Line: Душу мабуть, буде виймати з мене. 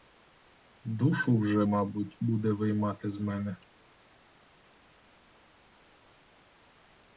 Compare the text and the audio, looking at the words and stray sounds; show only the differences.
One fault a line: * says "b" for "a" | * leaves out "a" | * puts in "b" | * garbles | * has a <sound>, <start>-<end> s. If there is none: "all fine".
* puts in "вже"